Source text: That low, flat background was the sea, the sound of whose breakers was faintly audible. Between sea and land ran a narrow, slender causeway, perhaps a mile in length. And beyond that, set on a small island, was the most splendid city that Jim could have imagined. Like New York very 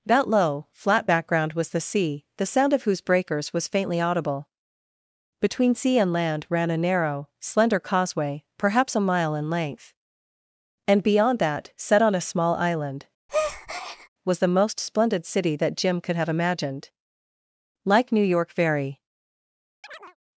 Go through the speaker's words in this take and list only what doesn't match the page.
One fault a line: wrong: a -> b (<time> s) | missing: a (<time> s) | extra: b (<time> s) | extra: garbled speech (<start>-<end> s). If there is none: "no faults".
no faults